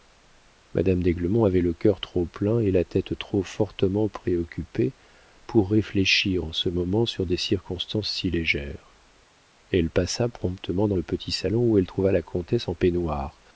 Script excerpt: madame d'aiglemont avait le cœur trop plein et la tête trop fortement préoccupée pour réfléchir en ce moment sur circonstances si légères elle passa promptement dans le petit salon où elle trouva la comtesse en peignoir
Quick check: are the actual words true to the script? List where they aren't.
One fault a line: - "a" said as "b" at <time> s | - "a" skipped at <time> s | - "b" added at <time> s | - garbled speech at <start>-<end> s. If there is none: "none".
- "des" added at 7.3 s